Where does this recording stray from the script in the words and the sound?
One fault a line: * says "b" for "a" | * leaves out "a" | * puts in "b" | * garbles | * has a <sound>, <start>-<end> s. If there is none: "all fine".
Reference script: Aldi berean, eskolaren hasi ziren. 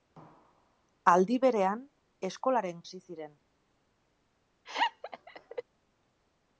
* has a laugh, 4.6-5.6 s